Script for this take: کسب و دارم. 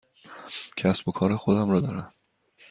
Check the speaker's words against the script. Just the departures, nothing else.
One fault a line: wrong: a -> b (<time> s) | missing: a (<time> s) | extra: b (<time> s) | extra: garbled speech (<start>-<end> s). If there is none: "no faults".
extra: کار خودم را (1.1 s)